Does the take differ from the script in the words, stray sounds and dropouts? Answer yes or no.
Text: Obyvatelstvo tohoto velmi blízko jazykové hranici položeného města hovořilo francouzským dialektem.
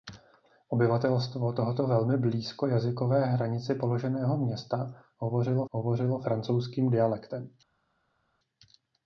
yes